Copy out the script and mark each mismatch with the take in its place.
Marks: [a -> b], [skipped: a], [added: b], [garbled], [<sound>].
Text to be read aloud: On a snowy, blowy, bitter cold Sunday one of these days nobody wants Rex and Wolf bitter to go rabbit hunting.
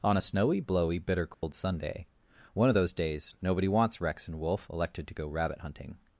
On a snowy, blowy, bitter cold [dropout] Sunday one of [these -> those] days nobody wants Rex and Wolf [bitter -> elected] to go rabbit hunting.